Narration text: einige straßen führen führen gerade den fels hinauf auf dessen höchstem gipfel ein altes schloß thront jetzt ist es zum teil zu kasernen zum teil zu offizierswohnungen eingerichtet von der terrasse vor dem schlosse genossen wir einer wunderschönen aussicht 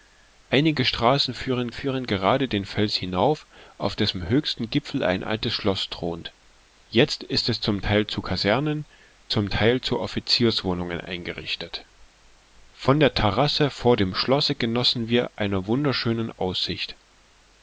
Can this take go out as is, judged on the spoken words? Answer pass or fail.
pass